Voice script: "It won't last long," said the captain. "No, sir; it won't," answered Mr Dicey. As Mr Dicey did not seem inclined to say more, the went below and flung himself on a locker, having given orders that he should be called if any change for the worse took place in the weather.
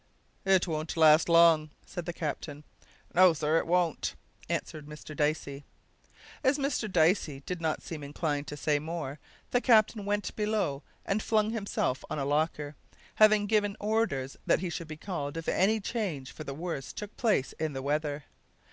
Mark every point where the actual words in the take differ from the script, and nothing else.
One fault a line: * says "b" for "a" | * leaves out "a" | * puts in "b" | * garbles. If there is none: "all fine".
* puts in "captain"